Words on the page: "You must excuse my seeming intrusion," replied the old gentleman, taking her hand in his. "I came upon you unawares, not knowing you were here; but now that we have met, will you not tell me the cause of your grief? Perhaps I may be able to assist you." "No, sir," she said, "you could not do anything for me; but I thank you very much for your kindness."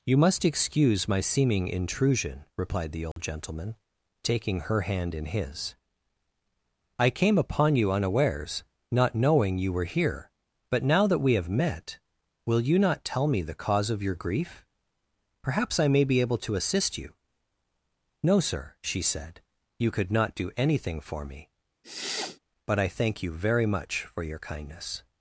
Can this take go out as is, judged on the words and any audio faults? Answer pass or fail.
fail